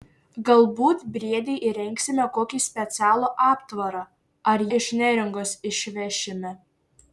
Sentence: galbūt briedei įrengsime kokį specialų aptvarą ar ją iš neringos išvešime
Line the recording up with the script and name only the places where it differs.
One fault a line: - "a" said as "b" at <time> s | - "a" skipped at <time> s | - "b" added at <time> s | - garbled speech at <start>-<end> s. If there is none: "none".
- "ją" skipped at 4.6 s